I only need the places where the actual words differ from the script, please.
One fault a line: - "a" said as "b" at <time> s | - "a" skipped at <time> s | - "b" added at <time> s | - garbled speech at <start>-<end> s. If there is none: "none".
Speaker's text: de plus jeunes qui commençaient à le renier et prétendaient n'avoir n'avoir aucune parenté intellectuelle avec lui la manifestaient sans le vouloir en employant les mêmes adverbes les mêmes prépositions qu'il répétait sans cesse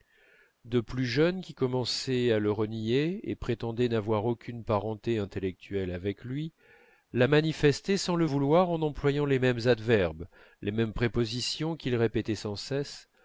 - "n'avoir" skipped at 4.2 s